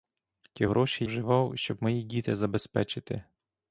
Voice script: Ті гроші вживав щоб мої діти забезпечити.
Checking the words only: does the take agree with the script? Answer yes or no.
yes